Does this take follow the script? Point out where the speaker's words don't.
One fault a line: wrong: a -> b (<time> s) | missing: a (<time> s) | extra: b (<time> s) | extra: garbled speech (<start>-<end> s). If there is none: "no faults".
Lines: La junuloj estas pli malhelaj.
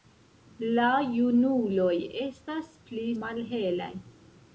no faults